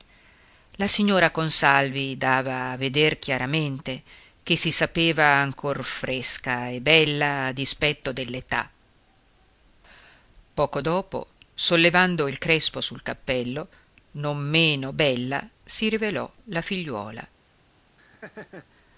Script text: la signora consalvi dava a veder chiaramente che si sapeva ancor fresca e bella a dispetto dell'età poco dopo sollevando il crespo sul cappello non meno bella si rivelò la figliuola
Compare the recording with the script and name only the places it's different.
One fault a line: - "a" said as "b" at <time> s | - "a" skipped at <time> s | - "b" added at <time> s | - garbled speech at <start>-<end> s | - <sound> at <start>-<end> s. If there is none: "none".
- laugh at 18.0-18.7 s